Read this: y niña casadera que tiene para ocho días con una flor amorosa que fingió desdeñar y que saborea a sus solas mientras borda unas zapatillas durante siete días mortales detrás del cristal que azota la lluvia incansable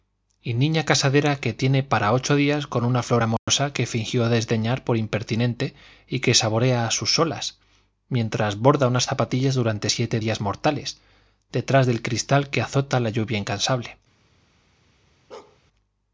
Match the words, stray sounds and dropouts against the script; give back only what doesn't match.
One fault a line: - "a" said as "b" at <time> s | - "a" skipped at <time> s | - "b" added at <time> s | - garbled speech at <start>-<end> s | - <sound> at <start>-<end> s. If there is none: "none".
- dropout at 3.4-3.5 s
- "por impertinente" added at 4.8 s
- bark at 15.3-15.6 s